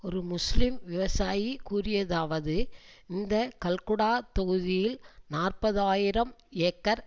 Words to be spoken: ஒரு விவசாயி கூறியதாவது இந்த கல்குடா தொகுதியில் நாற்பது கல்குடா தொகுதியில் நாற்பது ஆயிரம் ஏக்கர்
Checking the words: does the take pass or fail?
fail